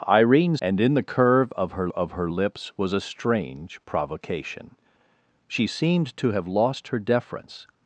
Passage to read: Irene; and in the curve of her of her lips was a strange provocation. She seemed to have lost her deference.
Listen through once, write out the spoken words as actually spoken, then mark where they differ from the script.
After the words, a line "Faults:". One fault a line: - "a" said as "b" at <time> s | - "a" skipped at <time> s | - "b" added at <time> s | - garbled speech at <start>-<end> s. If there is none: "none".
Irene; and in the curve of her of her lips was a strange provocation. She seemed to have lost her deference.
Faults:
none